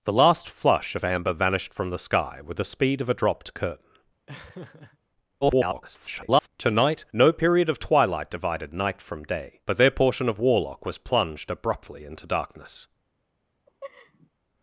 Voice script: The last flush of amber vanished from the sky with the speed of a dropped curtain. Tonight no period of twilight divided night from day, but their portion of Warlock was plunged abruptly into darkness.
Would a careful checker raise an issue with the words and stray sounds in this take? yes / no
yes